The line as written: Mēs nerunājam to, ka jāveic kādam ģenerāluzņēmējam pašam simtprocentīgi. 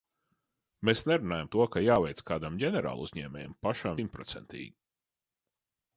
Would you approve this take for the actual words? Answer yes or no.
yes